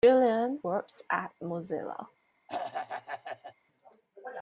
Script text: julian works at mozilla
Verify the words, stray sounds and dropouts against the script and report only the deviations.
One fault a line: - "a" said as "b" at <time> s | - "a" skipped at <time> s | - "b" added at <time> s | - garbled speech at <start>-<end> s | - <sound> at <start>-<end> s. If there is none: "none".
- throat clearing at 2.5-3.5 s